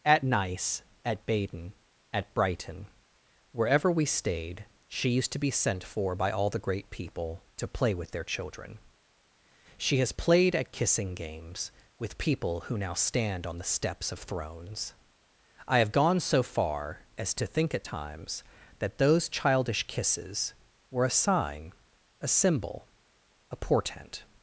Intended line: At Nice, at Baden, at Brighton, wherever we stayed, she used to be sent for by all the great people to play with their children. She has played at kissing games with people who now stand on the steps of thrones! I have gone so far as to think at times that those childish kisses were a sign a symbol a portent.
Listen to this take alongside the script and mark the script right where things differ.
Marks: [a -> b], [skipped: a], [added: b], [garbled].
At Nice, at Baden, at Brighton, wherever we stayed, she used to be sent for by all the great people to play with their children. She has played at kissing games with people who now stand on the steps of thrones! I have gone so far as to think at times that those childish kisses were a sign a symbol a portent.